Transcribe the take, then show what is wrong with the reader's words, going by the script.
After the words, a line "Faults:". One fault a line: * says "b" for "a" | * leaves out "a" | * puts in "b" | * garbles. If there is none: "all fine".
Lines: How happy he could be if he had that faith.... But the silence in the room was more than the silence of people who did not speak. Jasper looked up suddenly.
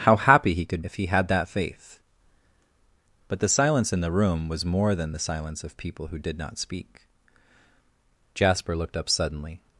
How happy he could if he had that faith.... But the silence in the room was more than the silence of people who did not speak. Jasper looked up suddenly.
Faults:
* leaves out "be"